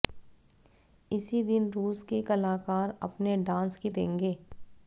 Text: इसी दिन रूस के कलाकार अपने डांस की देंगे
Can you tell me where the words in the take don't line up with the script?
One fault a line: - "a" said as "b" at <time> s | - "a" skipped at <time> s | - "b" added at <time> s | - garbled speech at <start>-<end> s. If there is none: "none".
none